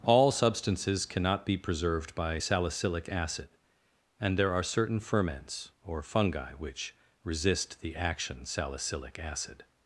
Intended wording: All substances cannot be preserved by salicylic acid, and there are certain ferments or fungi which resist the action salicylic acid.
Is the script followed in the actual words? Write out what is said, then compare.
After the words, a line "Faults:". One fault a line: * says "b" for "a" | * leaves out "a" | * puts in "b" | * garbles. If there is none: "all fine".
All substances cannot be preserved by salicylic acid, and there are certain ferments or fungi which resist the action salicylic acid.
Faults:
all fine